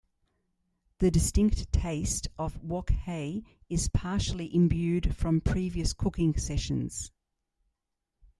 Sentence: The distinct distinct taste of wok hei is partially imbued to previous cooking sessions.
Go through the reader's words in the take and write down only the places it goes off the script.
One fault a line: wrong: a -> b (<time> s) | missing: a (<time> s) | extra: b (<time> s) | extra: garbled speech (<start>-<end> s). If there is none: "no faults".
missing: distinct (1.7 s)
wrong: to -> from (5.1 s)